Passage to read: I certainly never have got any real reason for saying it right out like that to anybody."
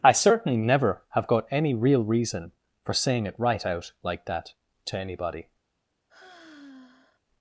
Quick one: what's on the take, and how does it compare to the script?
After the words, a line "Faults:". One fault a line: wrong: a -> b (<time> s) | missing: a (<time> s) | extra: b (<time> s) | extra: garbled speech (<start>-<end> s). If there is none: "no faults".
I certainly never have got any real reason for saying it right out like that to anybody."
Faults:
no faults